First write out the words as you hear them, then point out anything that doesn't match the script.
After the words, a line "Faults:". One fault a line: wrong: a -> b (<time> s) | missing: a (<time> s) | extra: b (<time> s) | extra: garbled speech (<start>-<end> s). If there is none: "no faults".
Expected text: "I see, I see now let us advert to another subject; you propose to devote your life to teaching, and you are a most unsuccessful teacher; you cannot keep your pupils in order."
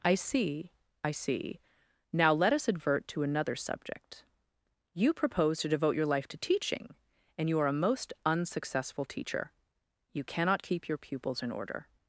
"I see, I see now let us advert to another subject; you propose to devote your life to teaching, and you are a most unsuccessful teacher; you cannot keep your pupils in order."
Faults:
no faults